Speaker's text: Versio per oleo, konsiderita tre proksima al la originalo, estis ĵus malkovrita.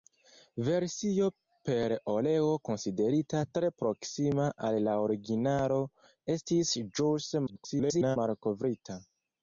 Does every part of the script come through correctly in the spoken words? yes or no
no